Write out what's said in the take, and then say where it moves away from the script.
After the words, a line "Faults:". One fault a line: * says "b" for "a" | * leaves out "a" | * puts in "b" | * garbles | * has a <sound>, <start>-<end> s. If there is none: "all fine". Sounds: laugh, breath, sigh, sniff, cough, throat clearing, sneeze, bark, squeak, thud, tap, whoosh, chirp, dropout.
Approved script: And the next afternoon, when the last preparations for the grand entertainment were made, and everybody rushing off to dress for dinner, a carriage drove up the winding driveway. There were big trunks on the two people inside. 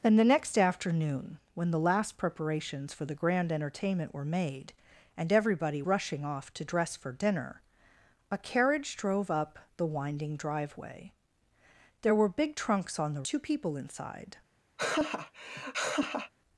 And the next afternoon, when the last preparations for the grand entertainment were made, and everybody rushing off to dress for dinner, a carriage drove up the winding driveway. There were big trunks on the two people inside.
Faults:
* has a laugh, 14.8-16.3 s